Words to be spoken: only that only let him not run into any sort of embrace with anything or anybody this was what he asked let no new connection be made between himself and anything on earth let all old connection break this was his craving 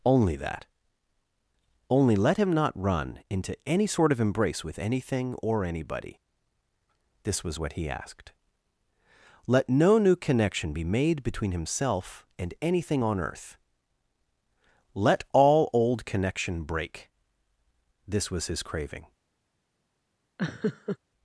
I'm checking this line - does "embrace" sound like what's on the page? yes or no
yes